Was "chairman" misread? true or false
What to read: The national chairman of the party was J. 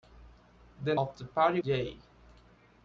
true